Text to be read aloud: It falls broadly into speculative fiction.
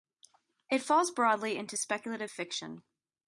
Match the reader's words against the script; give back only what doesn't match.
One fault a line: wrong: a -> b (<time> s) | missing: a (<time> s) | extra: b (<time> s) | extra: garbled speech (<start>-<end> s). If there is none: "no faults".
no faults